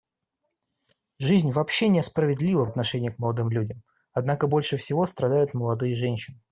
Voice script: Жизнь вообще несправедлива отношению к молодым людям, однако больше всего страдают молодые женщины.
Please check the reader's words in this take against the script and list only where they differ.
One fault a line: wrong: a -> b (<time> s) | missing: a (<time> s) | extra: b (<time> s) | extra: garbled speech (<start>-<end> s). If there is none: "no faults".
no faults